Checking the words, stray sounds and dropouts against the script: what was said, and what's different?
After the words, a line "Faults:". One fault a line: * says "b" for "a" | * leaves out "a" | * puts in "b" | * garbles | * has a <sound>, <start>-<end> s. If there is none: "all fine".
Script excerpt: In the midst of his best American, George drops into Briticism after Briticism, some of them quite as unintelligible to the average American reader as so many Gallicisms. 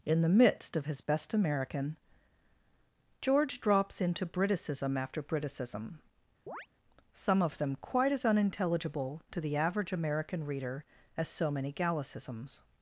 In the midst of his best American, George drops into Briticism after Briticism, some of them quite as unintelligible to the average American reader as so many Gallicisms.
Faults:
* has a chirp, 6.5-6.7 s